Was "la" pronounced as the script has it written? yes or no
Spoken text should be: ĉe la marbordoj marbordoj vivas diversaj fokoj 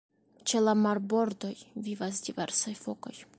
yes